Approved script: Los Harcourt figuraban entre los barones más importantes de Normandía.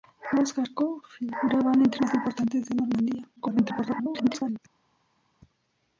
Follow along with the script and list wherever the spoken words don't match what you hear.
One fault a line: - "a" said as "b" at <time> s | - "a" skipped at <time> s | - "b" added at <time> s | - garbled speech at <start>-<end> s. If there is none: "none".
- "los barones" skipped at 2.0 s
- garbled speech at 3.4-4.6 s